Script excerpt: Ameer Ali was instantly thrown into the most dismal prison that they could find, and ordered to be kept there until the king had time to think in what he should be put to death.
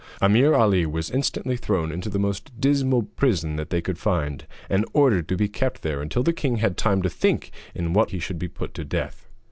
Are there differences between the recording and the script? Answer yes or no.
no